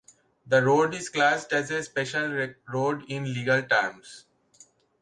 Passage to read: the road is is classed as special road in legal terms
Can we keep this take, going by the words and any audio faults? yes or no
no